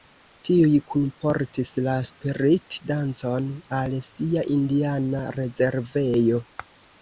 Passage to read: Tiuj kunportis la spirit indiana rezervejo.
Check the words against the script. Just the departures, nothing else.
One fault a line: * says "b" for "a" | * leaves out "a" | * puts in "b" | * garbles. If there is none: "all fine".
* puts in "dancon al sia"